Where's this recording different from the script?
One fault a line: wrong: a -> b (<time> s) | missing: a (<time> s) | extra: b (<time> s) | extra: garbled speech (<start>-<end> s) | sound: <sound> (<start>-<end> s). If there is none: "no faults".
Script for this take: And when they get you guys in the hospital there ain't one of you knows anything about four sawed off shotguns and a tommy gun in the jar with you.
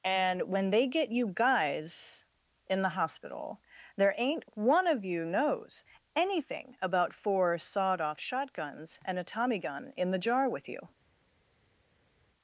no faults